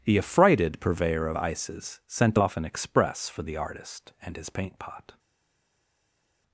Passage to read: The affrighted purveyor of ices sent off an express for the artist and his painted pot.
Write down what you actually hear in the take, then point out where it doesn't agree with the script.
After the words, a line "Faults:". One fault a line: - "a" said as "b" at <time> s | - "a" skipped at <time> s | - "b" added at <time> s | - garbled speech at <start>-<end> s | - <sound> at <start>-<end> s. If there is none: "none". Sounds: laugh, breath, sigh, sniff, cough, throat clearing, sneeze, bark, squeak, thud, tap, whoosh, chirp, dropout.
The affrighted purveyor of ices sent off an express for the artist and his paint pot.
Faults:
- "painted" said as "paint" at 4.5 s